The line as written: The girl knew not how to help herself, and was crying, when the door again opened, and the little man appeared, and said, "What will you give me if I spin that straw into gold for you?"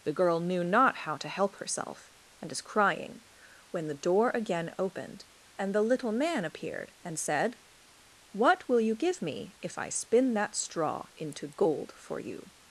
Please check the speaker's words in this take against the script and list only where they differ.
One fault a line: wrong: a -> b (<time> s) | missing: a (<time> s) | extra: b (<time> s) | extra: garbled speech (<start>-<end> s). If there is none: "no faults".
wrong: was -> is (2.5 s)